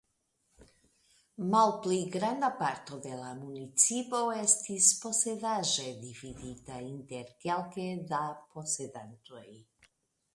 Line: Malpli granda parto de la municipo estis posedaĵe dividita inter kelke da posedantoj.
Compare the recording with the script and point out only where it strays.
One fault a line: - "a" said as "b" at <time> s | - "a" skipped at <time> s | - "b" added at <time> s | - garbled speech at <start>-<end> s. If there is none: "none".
none